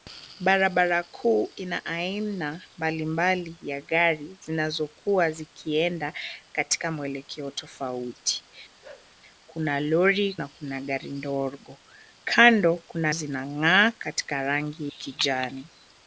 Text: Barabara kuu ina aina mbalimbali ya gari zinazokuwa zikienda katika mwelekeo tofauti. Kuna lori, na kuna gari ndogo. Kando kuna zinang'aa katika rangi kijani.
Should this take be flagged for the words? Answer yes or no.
no